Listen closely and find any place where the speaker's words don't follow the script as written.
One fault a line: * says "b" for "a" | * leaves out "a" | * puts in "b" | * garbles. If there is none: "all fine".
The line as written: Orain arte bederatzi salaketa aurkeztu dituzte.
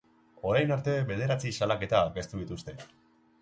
all fine